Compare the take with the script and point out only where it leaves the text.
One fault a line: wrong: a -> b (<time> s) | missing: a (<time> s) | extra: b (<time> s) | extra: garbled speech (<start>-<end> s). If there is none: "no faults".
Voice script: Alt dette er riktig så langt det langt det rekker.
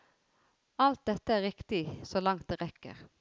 missing: langt det (2.6 s)